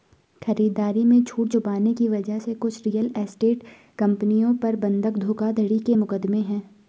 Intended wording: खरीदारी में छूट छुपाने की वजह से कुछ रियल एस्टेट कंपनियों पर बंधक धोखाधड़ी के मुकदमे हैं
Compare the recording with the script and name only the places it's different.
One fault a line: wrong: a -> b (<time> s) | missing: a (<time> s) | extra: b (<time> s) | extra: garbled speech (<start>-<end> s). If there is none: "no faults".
no faults